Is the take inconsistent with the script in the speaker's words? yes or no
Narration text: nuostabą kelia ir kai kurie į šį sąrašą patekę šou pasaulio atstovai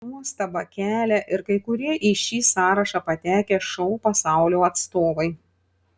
no